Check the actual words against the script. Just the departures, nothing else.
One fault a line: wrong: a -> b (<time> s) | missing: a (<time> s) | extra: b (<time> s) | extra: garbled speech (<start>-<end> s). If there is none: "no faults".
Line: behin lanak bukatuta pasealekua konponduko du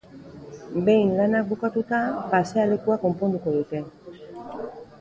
wrong: du -> dute (3.6 s)